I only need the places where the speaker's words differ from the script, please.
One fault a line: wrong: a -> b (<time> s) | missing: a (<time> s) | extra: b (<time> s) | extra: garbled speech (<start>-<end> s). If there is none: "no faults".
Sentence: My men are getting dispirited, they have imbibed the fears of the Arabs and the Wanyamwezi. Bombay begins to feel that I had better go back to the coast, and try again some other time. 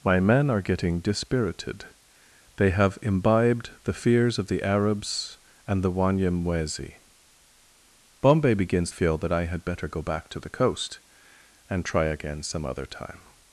missing: to (8.9 s)